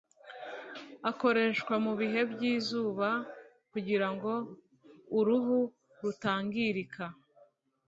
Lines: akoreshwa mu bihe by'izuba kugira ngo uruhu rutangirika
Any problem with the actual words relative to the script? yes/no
no